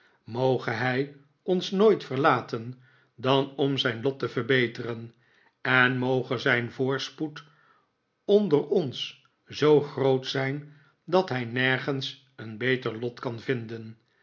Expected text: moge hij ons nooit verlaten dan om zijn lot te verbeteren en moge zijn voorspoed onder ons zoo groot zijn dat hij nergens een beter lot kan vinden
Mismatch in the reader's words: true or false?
false